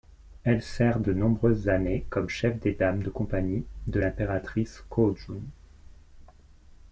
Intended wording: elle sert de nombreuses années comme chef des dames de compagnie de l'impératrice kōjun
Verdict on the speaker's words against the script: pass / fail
pass